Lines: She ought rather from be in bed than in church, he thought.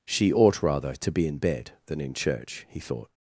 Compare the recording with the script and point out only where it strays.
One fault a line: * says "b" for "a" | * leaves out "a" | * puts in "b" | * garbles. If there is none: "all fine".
* says "to" for "from"